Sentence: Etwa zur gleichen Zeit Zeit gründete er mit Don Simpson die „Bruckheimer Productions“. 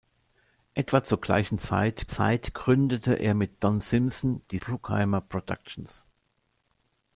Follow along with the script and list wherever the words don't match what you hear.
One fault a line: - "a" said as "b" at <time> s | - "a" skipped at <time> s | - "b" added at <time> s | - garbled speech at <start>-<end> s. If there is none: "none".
none